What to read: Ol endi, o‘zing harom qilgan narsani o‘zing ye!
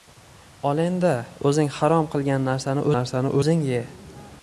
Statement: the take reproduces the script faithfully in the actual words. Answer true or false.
false